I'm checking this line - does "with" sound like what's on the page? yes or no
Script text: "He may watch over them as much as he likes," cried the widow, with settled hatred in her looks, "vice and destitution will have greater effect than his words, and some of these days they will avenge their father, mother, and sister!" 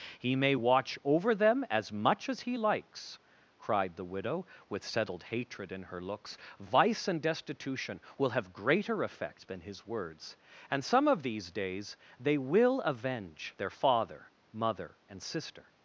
yes